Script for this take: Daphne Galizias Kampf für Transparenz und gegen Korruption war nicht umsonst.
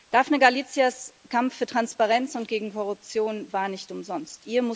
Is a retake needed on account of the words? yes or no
no